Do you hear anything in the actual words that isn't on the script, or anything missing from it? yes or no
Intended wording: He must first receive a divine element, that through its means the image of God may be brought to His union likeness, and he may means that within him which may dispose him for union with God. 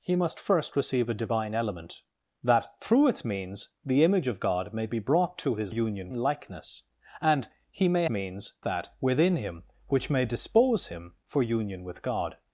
no